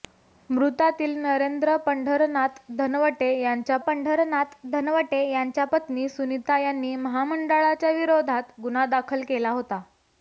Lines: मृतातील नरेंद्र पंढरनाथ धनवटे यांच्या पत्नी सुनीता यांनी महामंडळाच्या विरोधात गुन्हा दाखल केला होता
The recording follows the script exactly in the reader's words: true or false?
false